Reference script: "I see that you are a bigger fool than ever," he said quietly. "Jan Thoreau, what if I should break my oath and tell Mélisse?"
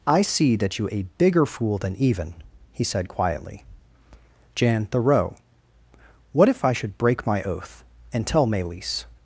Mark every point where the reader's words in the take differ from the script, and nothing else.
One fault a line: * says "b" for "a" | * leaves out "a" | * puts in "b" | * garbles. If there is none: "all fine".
* leaves out "are"
* says "even" for "ever"